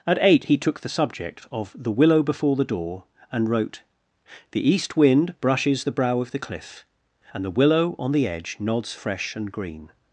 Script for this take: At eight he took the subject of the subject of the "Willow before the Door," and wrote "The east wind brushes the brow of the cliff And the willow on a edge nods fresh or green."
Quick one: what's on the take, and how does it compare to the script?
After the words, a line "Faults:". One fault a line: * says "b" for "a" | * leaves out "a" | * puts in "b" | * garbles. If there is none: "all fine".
At eight he took the subject of the "Willow before the Door," and wrote "The east wind brushes the brow of the cliff And the willow on the edge nods fresh and green."
Faults:
* leaves out "subject of the"
* says "the" for "a"
* says "and" for "or"